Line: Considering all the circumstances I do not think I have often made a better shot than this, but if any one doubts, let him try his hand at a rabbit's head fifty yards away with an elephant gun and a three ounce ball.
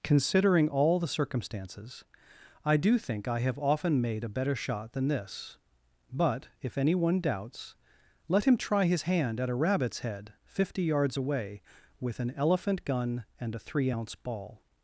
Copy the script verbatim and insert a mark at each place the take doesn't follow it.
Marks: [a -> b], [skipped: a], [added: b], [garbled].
Considering all the circumstances I do [skipped: not] think I have often made a better shot than this, but if any one doubts, let him try his hand at a rabbit's head fifty yards away with an elephant gun and a three ounce ball.